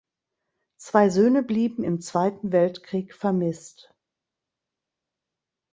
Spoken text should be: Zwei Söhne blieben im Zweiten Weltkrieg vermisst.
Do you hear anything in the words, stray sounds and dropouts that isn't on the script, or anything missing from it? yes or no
no